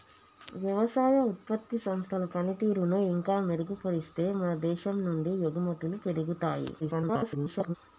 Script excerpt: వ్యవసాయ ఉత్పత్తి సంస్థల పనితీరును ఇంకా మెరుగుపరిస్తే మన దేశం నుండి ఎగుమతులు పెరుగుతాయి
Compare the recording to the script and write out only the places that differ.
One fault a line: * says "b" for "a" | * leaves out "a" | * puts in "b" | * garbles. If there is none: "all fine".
* garbles